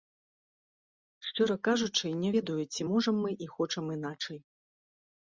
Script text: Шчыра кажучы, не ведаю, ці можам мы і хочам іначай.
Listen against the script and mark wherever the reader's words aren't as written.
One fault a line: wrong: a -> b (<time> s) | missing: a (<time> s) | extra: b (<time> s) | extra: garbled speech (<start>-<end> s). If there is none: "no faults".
no faults